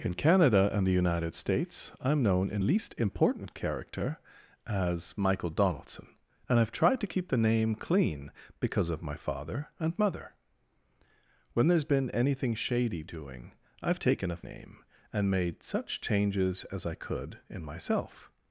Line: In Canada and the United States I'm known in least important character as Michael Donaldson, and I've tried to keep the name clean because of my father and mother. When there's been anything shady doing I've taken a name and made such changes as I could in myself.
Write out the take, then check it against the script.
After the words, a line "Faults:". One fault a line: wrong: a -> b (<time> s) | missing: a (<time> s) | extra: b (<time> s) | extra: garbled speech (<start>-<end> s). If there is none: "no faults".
In Canada and the United States I'm known in least important character as Michael Donaldson, and I've tried to keep the name clean because of my father and mother. When there's been anything shady doing I've taken a name and made such changes as I could in myself.
Faults:
no faults